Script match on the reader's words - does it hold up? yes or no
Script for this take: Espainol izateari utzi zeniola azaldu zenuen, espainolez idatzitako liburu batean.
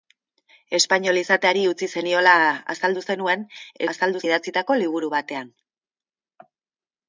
no